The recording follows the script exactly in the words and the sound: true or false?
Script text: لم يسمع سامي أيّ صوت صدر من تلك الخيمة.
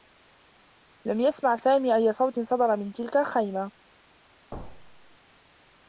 false